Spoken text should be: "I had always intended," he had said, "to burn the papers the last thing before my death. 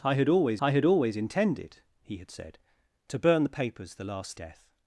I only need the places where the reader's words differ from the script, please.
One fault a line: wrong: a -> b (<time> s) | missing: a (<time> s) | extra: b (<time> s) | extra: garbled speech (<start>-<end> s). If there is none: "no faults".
extra: I had always (0.6 s)
missing: thing before my (4.4 s)